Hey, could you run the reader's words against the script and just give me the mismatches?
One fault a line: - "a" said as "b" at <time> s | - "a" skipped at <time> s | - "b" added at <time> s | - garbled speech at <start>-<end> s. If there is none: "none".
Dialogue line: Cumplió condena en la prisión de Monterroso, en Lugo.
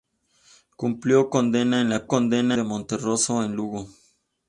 - "prisión" said as "condena" at 2.1 s